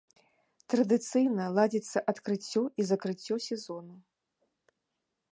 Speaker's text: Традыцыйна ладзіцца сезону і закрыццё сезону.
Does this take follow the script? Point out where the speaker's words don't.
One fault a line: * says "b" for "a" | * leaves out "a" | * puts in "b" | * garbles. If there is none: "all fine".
* says "адкрыццё" for "сезону"